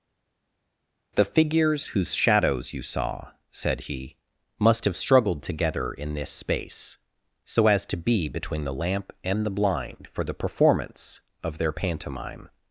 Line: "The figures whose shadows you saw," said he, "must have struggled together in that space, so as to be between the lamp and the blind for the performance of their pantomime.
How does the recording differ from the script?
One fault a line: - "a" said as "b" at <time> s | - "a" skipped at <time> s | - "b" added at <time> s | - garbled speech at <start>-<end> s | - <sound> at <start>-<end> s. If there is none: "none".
- "that" said as "this" at 6.1 s